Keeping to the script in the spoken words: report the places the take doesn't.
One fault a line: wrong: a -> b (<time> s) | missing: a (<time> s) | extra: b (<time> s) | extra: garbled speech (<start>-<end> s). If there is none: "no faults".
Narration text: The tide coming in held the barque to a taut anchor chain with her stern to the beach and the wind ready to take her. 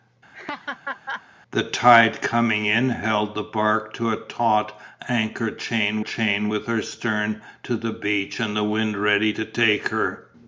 extra: chain (6.0 s)